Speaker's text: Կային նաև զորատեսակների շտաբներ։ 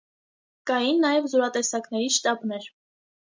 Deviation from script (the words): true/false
false